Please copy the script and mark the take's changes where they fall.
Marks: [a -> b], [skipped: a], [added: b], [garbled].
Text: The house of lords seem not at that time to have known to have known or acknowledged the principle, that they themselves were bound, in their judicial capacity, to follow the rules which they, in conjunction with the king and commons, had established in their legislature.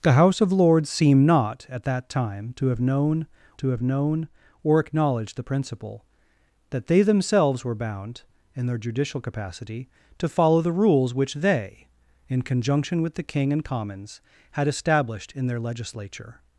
The house of lords seem not at that time to have known to have known or acknowledged the principle, that they themselves were bound, in their judicial capacity, to follow the rules which they, in conjunction with the king and commons, had established in their legislature.